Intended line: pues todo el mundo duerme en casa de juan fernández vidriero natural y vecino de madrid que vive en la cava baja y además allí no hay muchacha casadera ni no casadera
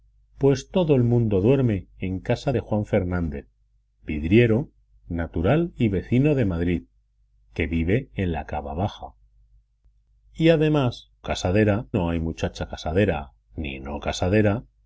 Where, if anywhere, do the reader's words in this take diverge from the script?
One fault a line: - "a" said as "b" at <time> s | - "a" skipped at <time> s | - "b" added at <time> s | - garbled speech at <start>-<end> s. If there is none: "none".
- "allí" said as "casadera" at 11.2 s